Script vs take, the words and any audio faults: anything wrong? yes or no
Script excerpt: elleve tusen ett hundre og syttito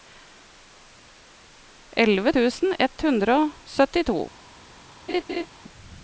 yes